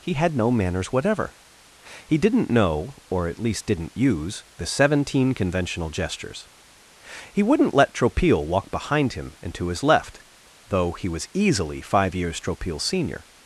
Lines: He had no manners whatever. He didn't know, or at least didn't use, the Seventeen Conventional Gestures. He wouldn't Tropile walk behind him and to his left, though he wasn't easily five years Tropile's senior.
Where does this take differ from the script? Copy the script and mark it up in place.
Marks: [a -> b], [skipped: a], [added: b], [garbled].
He had no manners whatever. He didn't know, or at least didn't use, the Seventeen Conventional Gestures. He wouldn't [added: let] Tropile walk behind him and to his left, though he [wasn't -> was] easily five years Tropile's senior.